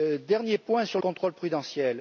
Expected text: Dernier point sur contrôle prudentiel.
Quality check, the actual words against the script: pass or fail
pass